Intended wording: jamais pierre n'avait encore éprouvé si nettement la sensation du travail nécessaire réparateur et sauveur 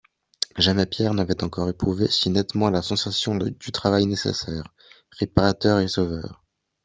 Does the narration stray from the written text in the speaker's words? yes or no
no